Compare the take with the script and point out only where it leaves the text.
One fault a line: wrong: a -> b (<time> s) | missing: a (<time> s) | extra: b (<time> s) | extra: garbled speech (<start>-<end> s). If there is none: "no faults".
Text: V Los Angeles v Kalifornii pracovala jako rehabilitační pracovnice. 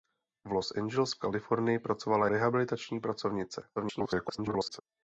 missing: jako (2.3 s)
extra: garbled speech (3.8-4.8 s)